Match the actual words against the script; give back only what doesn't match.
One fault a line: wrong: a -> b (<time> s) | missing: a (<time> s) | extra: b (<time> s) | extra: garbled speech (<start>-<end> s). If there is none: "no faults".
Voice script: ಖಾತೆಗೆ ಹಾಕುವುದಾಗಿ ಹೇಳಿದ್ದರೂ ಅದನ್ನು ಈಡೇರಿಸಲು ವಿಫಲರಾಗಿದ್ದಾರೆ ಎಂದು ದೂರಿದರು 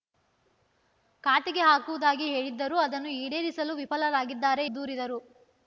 missing: ಎಂದು (4.7 s)